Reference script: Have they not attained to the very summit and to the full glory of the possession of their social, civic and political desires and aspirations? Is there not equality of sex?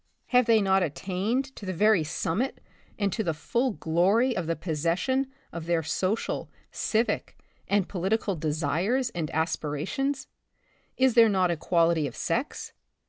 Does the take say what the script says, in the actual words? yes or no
yes